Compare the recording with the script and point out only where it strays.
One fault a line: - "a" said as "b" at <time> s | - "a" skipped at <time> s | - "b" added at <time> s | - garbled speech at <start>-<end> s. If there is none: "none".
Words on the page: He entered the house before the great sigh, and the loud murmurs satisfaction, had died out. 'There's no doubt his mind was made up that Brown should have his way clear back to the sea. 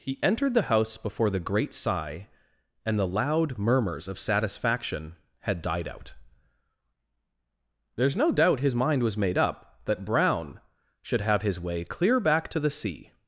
- "of" added at 4.1 s